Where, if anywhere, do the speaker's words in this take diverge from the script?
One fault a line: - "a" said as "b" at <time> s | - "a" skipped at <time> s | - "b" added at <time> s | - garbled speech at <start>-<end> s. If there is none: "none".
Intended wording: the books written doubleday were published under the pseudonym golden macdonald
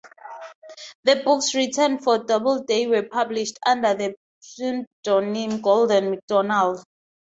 - "for" added at 2.0 s